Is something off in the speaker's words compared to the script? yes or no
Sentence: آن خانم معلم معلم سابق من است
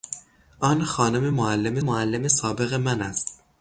no